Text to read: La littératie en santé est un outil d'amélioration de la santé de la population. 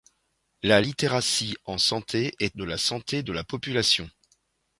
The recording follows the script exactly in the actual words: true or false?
false